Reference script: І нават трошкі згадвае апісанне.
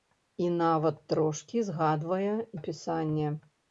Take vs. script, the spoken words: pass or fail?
pass